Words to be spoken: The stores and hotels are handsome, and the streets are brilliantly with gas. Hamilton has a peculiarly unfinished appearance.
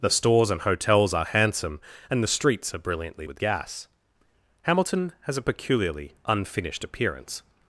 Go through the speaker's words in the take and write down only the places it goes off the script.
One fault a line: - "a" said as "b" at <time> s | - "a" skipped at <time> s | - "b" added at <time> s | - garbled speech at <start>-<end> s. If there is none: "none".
none